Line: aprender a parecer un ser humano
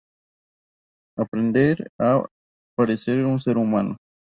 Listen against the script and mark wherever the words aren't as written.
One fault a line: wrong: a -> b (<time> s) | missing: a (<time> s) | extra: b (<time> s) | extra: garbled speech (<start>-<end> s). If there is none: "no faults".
no faults